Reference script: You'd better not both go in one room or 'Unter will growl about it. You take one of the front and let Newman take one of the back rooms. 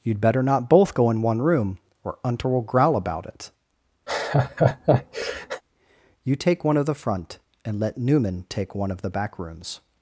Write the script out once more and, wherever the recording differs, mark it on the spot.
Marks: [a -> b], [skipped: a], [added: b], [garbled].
You'd better not both go in one room or 'Unter will growl about it. You take one of the front and let Newman take one of the back rooms.